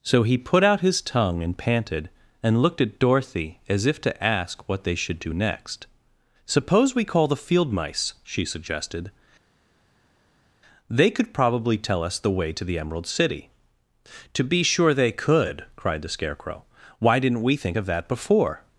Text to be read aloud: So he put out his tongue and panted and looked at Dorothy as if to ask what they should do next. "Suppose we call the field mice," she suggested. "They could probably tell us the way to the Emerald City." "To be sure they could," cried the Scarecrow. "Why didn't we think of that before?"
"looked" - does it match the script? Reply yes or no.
yes